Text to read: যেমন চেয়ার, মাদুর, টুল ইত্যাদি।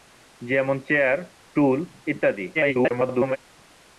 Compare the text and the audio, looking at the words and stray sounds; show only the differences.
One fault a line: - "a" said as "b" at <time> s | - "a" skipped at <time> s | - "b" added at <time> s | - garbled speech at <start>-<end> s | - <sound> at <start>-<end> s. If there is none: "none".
- "মাদুর" skipped at 1.2 s
- garbled speech at 2.5-3.4 s